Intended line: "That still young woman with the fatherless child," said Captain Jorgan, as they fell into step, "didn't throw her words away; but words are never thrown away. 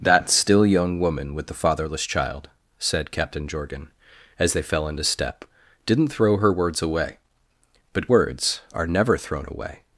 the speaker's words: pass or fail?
pass